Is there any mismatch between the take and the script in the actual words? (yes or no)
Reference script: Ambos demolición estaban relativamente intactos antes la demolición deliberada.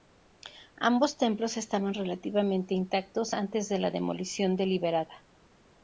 yes